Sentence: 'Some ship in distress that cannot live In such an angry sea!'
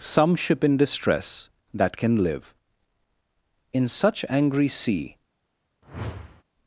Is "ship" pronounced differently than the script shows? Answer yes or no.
no